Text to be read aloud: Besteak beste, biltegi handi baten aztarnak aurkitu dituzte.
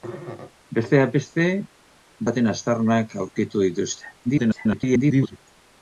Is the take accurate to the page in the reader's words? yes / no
no